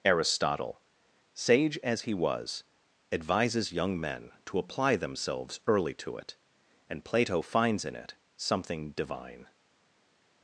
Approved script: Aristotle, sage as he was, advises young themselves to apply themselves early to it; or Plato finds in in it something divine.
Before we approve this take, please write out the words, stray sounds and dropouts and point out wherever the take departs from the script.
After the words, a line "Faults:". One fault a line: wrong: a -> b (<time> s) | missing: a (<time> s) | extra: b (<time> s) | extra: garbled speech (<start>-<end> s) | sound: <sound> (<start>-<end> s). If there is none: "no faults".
Aristotle, sage as he was, advises young men to apply themselves early to it; and Plato finds in it something divine.
Faults:
wrong: themselves -> men (4.0 s)
wrong: or -> and (6.9 s)
missing: in (8.0 s)